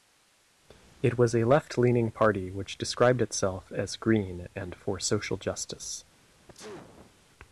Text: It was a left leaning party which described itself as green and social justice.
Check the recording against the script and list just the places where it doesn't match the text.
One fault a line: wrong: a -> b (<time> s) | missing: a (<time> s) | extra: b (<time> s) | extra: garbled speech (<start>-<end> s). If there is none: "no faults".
extra: for (4.8 s)